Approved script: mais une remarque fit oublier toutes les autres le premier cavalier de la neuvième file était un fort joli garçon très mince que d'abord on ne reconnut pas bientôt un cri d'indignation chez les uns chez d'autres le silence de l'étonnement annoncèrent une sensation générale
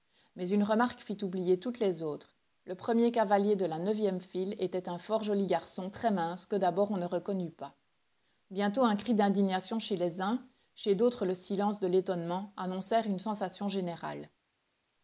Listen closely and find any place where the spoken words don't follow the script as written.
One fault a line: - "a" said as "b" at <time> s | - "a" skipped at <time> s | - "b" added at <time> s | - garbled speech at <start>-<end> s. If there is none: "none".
none